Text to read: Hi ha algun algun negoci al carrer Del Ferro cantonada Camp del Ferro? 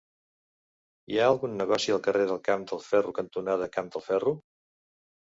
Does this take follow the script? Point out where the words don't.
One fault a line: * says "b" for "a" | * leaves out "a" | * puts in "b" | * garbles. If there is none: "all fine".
* leaves out "algun"
* puts in "Camp"